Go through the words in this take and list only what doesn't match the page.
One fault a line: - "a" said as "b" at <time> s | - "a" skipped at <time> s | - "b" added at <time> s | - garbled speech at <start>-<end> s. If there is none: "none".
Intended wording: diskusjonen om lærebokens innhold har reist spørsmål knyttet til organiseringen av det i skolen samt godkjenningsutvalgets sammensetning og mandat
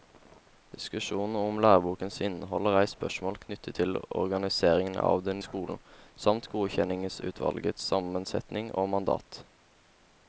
none